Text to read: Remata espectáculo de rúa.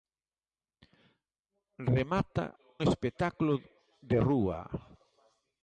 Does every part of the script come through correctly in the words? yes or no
yes